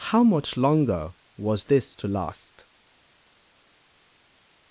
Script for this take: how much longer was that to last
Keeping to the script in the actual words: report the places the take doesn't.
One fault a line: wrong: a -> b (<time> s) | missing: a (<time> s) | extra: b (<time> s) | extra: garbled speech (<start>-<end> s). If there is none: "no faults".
wrong: that -> this (1.6 s)